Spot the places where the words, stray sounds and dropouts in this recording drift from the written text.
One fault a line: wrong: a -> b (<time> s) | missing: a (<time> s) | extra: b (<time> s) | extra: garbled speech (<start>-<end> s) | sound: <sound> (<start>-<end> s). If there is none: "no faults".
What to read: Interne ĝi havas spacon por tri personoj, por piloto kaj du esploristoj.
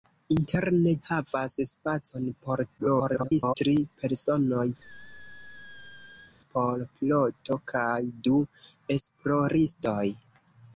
missing: ĝi (0.9 s)
extra: garbled speech (2.8-3.6 s)
sound: squeak (4.8-6.4 s)